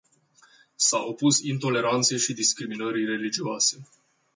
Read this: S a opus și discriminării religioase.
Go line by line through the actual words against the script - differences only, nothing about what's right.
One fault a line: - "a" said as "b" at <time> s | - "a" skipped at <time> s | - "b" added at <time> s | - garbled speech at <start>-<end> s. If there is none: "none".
- "intoleranței" added at 1.4 s